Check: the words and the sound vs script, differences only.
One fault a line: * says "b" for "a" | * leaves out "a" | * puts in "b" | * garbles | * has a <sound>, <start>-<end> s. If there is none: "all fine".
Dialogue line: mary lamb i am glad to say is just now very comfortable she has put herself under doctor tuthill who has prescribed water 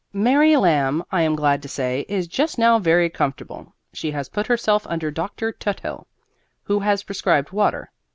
all fine